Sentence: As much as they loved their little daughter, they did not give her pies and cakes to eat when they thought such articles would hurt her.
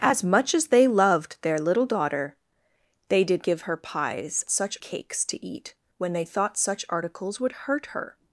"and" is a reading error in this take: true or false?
true